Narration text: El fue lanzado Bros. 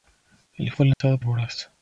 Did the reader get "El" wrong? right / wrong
right